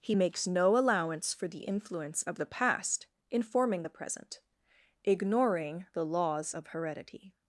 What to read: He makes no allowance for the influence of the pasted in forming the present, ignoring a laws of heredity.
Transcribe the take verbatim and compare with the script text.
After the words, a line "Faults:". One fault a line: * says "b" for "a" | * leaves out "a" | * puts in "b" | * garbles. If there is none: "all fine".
He makes no allowance for the influence of the past in forming the present, ignoring the laws of heredity.
Faults:
* says "past" for "pasted"
* says "the" for "a"